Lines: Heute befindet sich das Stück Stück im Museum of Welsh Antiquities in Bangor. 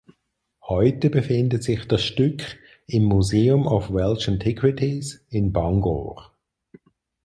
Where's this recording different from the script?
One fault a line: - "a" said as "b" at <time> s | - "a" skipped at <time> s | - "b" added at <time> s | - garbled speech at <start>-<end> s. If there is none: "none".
- "Stück" skipped at 2.4 s